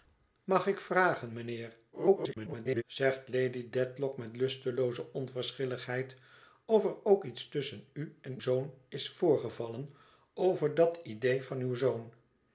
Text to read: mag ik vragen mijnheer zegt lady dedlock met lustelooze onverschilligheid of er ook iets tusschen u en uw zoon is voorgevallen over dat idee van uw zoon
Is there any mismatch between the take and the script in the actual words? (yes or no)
yes